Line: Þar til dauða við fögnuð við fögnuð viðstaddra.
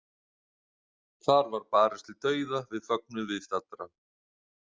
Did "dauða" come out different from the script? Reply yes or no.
no